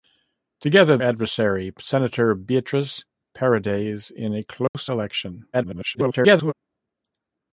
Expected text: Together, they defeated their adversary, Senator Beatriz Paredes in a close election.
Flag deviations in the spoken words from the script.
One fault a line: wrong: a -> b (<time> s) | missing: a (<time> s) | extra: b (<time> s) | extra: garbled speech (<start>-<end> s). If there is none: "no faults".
missing: they defeated their (1.0 s)
extra: garbled speech (5.5-6.5 s)